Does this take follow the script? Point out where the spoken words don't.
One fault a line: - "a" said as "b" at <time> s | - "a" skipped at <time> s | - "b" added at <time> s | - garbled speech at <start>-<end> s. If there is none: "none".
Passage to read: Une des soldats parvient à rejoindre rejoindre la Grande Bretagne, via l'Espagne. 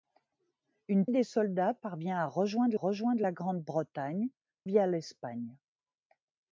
none